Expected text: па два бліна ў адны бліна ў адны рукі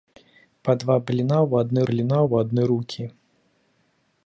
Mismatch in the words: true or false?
false